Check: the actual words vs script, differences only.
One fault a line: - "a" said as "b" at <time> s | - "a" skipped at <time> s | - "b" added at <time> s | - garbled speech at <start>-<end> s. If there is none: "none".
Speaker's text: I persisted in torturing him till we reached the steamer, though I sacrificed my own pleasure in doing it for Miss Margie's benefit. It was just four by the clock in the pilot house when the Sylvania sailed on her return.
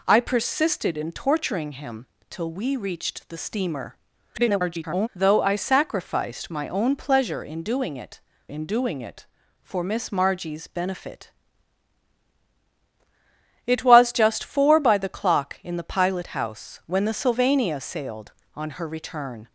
- garbled speech at 4.3-5.1 s
- "in doing it" added at 8.5 s